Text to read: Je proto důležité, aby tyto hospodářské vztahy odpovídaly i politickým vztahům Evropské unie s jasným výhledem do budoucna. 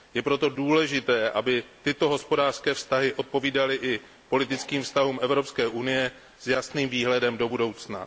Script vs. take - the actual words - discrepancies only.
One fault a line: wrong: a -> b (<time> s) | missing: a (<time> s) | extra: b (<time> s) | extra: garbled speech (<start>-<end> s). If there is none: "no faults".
no faults